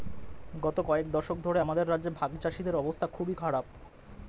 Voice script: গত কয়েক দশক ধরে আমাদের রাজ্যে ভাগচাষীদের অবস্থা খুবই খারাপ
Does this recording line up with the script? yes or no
yes